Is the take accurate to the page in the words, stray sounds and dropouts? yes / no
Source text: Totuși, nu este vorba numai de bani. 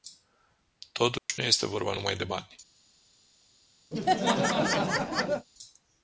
no